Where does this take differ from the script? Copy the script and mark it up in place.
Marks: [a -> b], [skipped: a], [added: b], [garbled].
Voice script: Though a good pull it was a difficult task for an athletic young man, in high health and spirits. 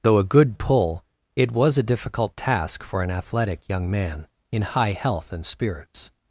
Though a good pull it was a difficult task for an athletic young man, in high health and spirits.